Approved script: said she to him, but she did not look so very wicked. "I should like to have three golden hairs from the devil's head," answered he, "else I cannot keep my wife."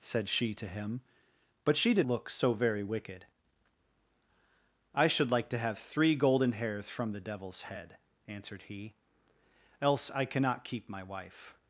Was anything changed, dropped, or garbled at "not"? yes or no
yes